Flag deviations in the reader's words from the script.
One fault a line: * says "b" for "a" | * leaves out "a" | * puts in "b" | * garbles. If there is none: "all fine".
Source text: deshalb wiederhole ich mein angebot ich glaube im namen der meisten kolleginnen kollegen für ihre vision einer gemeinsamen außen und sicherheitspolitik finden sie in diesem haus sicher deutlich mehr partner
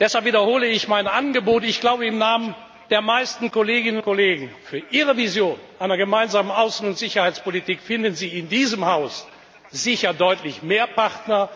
all fine